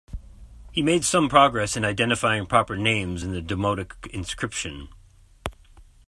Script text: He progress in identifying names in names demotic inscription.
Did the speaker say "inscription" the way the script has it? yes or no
yes